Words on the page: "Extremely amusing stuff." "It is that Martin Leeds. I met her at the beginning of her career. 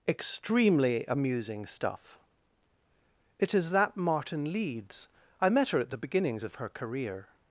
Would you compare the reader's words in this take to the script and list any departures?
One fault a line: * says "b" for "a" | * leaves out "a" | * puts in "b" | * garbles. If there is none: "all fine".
* says "beginnings" for "beginning"